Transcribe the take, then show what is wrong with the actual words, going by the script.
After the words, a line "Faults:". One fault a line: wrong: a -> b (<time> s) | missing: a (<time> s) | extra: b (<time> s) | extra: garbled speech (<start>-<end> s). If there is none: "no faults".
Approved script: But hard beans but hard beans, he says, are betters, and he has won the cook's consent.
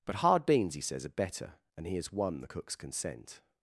But hard beans, he says, are better, and he has won the cook's consent.
Faults:
missing: but hard beans (0.8 s)
wrong: betters -> better (1.1 s)